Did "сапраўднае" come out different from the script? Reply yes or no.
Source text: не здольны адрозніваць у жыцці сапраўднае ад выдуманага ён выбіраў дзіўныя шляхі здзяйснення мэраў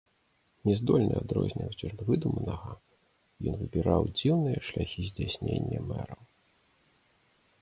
yes